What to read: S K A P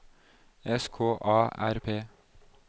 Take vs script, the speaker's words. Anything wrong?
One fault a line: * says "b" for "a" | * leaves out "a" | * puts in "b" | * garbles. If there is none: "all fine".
* puts in "R"